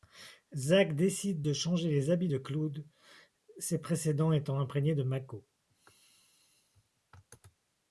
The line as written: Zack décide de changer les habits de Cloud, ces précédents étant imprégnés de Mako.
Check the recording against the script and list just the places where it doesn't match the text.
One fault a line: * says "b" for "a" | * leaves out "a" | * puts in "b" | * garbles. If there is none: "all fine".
all fine